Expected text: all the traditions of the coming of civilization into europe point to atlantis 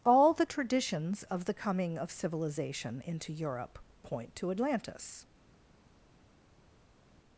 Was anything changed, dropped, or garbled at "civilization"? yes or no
no